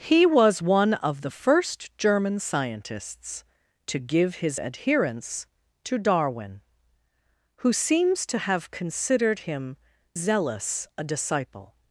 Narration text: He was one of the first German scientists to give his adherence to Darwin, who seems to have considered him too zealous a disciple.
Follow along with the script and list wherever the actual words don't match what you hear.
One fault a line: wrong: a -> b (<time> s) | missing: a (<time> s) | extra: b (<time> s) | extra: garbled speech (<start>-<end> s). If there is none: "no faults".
missing: too (9.8 s)